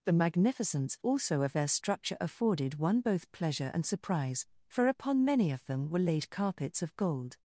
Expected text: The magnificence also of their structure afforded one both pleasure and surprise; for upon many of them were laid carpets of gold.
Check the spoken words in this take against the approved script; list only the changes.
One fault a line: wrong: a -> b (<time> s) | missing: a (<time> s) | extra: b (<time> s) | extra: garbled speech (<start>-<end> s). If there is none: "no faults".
no faults